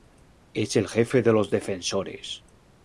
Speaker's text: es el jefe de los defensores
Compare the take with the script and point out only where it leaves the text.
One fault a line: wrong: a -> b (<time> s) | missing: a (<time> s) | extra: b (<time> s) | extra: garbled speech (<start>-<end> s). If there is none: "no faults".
no faults